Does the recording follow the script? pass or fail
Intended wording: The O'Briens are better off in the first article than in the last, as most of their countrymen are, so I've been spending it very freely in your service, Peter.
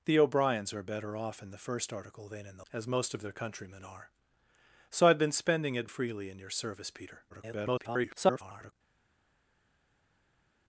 fail